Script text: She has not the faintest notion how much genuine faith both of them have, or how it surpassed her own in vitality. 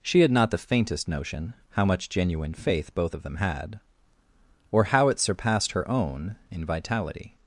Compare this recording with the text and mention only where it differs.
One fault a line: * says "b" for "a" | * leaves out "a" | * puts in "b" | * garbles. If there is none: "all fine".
* says "had" for "has"
* says "had" for "have"